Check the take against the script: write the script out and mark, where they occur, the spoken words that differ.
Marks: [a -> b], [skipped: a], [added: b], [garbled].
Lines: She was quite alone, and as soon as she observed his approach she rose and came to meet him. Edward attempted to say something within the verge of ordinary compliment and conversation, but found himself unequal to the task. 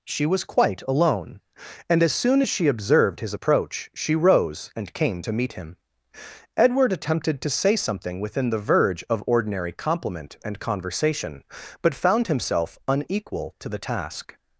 She was quite alone, and as soon as she observed his approach she rose and came to meet him. Edward attempted to say something within the verge of ordinary compliment and conversation, but found himself unequal to the task.